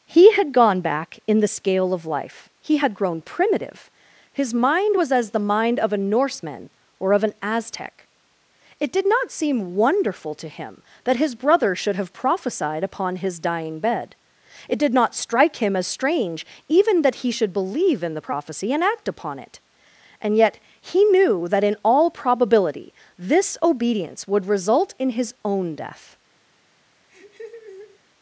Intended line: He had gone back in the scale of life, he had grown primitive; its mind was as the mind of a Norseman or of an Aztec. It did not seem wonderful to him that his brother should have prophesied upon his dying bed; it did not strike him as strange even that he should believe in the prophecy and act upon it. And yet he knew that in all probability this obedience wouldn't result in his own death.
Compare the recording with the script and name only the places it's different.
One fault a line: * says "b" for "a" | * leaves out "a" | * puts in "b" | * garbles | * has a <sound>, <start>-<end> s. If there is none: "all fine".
* says "his" for "its"
* says "would" for "wouldn't"
* has a laugh, 27.1-28.0 s